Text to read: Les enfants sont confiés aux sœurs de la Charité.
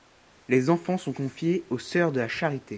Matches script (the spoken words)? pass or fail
pass